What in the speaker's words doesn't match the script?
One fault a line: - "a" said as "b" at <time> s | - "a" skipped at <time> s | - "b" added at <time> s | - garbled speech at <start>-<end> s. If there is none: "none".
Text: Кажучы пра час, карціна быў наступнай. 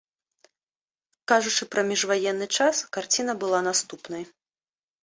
- "міжваенны" added at 1.9 s
- "быў" said as "была" at 3.5 s